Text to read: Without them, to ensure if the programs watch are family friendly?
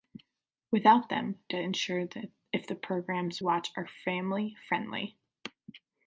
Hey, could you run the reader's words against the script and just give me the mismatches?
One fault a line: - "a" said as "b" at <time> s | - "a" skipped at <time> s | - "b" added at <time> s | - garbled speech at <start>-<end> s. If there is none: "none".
none